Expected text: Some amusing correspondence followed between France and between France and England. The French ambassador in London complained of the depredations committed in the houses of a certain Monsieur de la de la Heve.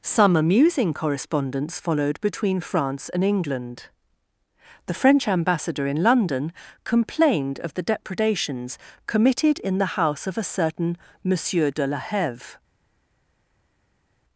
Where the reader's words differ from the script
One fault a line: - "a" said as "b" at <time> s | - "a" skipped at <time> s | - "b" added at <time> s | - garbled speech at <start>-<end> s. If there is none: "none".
- "between France and" skipped at 3.2 s
- "houses" said as "house" at 10.0 s
- "de la" skipped at 12.0 s